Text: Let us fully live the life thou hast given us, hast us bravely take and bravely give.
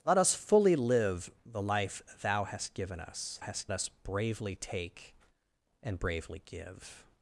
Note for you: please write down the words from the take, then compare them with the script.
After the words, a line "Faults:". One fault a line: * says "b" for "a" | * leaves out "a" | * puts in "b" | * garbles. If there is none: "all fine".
Let us fully live the life thou hast given us, hast us bravely take and bravely give.
Faults:
all fine